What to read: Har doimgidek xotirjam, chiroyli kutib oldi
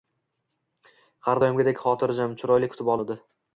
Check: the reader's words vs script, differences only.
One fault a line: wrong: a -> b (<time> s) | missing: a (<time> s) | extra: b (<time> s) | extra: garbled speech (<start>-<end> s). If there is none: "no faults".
no faults